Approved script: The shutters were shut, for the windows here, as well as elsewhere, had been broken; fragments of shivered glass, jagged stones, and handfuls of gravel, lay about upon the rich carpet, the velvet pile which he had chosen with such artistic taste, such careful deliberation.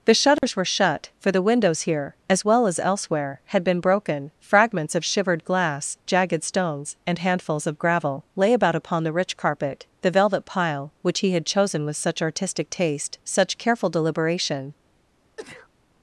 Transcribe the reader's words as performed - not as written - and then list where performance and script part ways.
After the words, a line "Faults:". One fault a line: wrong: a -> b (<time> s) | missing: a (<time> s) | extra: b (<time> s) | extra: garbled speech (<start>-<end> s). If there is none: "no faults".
The shutters were shut, for the windows here, as well as elsewhere, had been broken; fragments of shivered glass, jagged stones, and handfuls of gravel, lay about upon the rich carpet, the velvet pile which he had chosen with such artistic taste, such careful deliberation.
Faults:
no faults